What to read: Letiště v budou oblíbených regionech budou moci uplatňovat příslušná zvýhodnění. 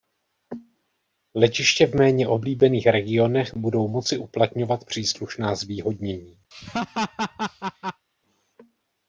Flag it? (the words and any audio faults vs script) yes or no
yes